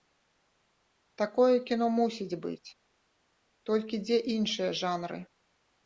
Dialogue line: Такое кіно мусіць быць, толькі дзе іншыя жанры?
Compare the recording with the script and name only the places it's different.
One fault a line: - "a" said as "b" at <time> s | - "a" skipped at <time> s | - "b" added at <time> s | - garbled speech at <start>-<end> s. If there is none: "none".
none